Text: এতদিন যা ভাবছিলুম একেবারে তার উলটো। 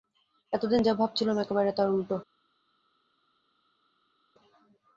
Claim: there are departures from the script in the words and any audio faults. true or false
false